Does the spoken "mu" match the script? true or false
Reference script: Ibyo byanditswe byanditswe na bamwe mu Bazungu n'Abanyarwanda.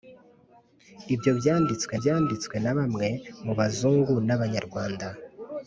true